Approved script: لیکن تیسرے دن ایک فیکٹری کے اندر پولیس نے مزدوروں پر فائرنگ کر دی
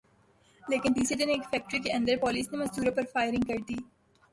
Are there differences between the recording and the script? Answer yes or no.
no